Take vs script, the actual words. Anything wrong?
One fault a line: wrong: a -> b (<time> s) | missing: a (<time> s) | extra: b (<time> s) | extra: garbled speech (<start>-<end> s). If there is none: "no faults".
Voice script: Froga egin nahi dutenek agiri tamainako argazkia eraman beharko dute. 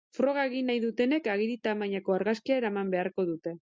no faults